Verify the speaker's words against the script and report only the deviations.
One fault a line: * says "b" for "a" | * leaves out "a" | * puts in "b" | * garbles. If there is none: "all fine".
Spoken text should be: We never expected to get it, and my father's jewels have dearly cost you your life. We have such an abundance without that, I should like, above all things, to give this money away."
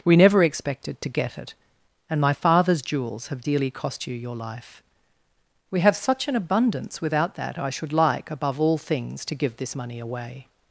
all fine